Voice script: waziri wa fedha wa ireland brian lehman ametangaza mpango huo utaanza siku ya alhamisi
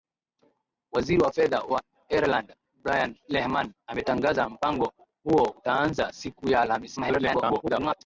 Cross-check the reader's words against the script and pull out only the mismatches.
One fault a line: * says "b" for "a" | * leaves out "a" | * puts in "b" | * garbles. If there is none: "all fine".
* garbles